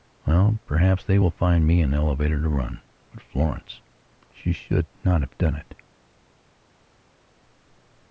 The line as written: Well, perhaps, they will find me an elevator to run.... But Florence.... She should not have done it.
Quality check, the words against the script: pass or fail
pass